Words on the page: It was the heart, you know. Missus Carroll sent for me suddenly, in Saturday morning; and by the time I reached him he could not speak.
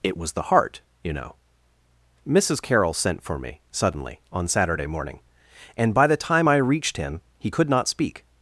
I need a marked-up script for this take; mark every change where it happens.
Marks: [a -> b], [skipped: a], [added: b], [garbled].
It was the heart, you know. Missus Carroll sent for me suddenly, [in -> on] Saturday morning; and by the time I reached him he could not speak.